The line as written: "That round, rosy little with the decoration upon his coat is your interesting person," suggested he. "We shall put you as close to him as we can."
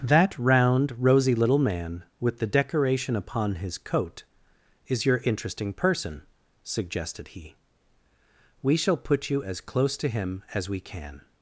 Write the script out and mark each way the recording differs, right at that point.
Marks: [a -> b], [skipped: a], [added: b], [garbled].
"That round, rosy little [added: man] with the decoration upon his coat is your interesting person," suggested he. "We shall put you as close to him as we can."